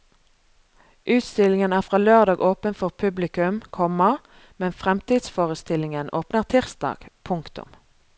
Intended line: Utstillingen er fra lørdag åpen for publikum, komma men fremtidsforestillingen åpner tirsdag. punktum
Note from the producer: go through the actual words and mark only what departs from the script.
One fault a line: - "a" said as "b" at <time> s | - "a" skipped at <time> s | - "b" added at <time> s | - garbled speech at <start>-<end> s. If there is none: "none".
none